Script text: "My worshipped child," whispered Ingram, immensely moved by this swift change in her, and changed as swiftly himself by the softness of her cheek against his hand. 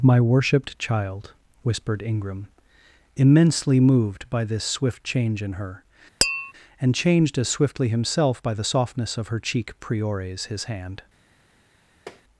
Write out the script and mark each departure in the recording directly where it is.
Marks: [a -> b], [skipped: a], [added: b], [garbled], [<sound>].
"My worshipped child," whispered Ingram, immensely moved by this swift change in her, [tap] and changed as swiftly himself by the softness of her cheek [against -> priores] his hand. [tap]